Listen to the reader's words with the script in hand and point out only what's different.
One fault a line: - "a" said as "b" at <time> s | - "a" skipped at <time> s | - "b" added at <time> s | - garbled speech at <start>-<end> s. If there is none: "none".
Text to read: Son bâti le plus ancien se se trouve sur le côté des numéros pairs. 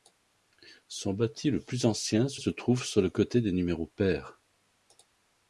none